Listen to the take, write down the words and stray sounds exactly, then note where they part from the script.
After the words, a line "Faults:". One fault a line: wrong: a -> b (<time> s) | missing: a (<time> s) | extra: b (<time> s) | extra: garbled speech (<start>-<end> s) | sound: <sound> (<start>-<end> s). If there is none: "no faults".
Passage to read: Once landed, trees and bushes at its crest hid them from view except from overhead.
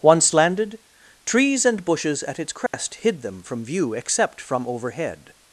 Once landed, trees and bushes at its crest hid them from view except from overhead.
Faults:
sound: dropout (2.7-2.7 s)